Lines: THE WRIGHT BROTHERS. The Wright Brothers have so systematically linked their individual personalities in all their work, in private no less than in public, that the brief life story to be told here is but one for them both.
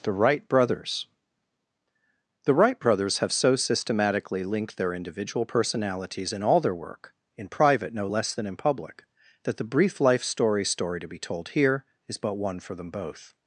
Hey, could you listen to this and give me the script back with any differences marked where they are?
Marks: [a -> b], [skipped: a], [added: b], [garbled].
THE WRIGHT BROTHERS. The Wright Brothers have so systematically linked their individual personalities in all their work, in private no less than in public, that the brief life story [added: story] to be told here is but one for them both.